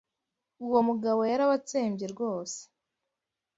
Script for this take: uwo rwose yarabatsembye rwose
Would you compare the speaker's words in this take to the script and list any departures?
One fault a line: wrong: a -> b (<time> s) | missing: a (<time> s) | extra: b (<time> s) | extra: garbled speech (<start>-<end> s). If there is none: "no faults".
wrong: rwose -> mugabo (0.9 s)